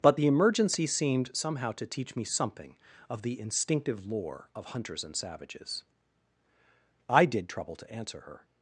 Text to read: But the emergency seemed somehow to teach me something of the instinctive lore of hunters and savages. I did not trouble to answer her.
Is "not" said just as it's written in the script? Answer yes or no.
no